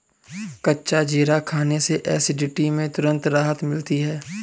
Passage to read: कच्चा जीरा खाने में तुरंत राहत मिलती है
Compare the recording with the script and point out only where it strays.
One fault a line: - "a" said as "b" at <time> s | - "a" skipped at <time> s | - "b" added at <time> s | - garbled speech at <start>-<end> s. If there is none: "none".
- "से एसिडिटी" added at 1.9 s